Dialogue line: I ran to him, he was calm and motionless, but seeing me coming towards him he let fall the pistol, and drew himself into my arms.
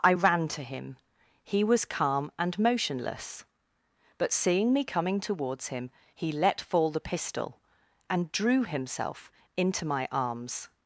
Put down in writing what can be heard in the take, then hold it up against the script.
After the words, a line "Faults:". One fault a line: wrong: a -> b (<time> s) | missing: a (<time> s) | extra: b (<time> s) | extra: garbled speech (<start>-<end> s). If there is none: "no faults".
I ran to him, he was calm and motionless, but seeing me coming towards him he let fall the pistol, and drew himself into my arms.
Faults:
no faults